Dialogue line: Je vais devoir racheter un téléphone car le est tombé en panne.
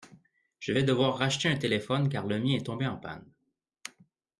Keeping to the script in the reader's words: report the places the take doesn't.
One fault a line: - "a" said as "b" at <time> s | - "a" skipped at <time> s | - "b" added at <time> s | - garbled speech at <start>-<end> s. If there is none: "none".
- "mien" added at 2.4 s